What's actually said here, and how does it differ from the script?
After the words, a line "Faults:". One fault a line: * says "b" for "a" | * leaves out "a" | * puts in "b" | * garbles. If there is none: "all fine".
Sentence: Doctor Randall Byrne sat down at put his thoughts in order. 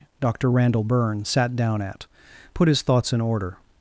Doctor Randall Byrne sat down at put his thoughts in order.
Faults:
all fine